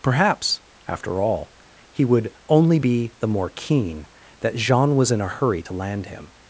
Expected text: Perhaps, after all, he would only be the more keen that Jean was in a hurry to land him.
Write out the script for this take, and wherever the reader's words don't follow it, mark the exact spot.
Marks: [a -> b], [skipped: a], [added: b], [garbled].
Perhaps, after all, he would only be the more keen that Jean was in a hurry to land him.